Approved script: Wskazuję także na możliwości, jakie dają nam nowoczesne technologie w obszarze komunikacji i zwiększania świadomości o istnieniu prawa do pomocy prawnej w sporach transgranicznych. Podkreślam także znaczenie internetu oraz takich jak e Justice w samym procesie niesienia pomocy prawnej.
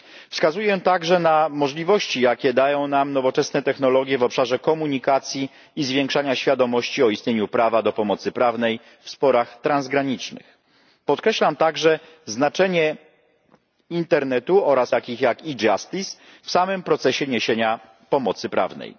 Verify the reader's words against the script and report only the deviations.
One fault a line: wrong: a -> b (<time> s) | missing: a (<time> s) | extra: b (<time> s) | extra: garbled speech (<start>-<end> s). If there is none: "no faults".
no faults